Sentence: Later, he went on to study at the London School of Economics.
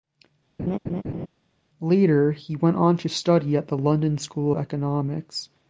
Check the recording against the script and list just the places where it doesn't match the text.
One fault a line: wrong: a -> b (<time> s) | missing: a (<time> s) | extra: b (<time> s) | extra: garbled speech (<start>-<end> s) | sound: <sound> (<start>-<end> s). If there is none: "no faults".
sound: laugh (0.6-1.3 s)
missing: of (4.5 s)